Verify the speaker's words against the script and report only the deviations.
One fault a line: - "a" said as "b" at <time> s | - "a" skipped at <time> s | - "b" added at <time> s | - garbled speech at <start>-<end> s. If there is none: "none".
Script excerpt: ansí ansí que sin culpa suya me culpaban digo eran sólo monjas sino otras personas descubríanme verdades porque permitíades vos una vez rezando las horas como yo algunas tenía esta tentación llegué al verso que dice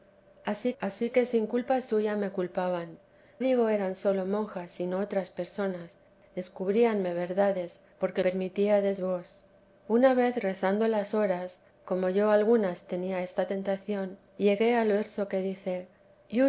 none